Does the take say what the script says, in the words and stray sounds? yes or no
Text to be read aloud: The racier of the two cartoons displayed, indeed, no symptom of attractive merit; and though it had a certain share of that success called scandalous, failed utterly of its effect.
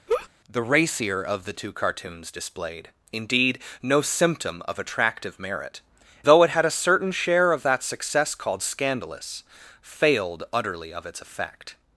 no